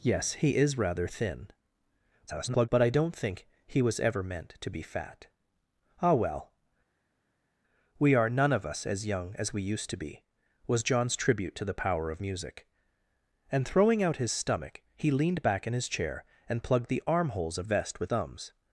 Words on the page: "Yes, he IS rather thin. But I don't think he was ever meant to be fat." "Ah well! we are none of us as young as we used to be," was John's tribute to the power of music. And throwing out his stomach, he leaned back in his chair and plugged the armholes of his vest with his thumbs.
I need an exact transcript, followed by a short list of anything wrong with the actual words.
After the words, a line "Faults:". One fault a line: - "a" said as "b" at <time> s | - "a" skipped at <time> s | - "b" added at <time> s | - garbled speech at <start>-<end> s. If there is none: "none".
"Yes, he IS rather thin. [garbled] But I don't think he was ever meant to be fat." "Ah well! we are none of us as young as we used to be," was John's tribute to the power of music. And throwing out his stomach, he leaned back in his chair and plugged the armholes of vest with thumbs.
Faults:
- garbled speech at 2.3-2.7 s
- "his" skipped at 17.7 s
- "his" skipped at 18.1 s